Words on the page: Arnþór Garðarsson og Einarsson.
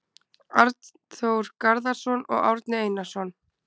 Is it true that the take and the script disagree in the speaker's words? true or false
true